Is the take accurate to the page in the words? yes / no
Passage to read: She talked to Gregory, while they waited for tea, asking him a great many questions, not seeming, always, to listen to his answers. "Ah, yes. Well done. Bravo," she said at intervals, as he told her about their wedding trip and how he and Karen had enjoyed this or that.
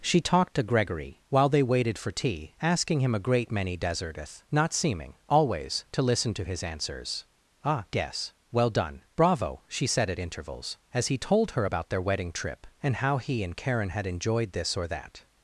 no